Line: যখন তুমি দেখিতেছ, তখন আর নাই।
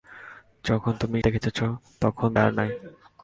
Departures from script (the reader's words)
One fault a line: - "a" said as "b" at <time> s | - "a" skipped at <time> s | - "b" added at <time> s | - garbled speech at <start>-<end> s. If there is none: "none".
none